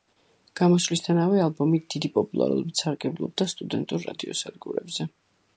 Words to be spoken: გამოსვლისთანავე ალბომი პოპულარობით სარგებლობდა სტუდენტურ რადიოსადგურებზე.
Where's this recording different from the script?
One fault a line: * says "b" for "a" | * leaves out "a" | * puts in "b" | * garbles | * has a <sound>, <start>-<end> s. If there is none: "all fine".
* puts in "დიდი"